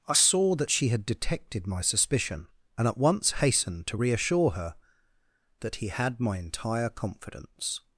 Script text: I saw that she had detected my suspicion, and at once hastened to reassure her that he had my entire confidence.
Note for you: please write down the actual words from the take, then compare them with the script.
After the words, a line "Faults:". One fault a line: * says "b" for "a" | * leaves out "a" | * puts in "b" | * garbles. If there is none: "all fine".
I saw that she had detected my suspicion, and at once hastened to reassure her that he had my entire confidence.
Faults:
all fine